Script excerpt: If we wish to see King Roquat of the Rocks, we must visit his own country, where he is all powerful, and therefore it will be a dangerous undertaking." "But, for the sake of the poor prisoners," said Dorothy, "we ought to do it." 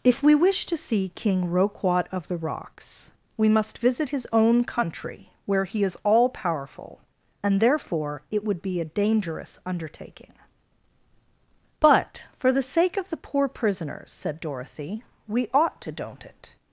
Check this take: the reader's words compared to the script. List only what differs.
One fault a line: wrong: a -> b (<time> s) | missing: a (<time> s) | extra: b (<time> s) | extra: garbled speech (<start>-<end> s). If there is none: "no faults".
wrong: will -> would (8.4 s)
wrong: do -> don't (15.9 s)